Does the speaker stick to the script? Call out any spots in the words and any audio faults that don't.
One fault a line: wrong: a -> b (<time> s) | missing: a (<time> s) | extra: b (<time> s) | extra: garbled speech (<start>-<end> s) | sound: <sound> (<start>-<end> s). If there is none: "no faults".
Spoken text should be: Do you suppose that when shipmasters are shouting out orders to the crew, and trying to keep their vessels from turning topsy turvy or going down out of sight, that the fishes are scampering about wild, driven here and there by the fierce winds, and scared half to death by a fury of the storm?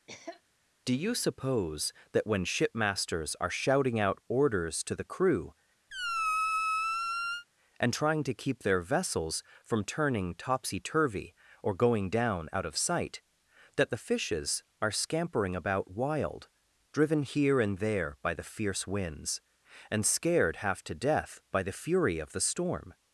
sound: cough (0.1-0.4 s)
sound: squeak (5.9-7.5 s)
wrong: a -> the (21.6 s)